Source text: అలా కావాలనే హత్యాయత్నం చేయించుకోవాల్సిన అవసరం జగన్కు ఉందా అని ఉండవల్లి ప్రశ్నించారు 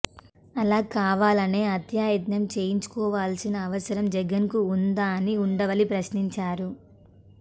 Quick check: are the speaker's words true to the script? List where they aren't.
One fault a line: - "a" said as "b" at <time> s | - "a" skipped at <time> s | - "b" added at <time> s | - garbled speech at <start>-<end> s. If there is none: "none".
none